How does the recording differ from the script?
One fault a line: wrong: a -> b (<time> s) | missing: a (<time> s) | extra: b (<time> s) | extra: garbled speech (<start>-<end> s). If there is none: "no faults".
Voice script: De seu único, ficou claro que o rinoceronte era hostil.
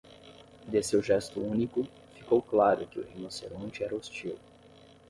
extra: gesto (1.0 s)